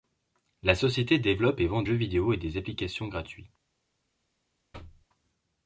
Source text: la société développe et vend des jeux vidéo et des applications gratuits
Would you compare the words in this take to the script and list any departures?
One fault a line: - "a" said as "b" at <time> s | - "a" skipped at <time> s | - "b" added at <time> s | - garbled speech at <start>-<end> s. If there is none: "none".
- "des" skipped at 1.8 s